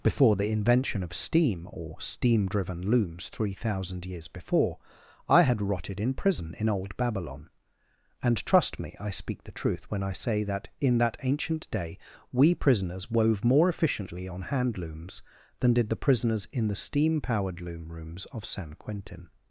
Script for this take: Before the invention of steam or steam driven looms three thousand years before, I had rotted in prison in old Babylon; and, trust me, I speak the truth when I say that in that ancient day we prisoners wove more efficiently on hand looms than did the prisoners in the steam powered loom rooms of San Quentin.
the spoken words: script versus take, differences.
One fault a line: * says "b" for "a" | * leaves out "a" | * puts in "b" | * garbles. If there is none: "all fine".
all fine